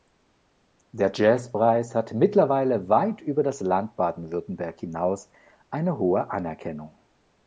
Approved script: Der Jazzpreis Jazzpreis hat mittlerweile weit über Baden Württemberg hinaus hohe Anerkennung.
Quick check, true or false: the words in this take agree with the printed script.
false